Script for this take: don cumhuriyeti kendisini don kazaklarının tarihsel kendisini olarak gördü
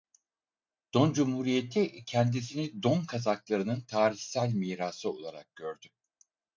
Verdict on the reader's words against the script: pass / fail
fail